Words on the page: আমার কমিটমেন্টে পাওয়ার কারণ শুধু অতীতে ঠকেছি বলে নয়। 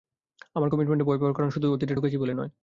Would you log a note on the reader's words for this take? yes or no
yes